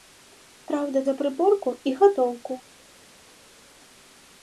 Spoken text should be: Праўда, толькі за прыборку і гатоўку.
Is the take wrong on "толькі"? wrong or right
wrong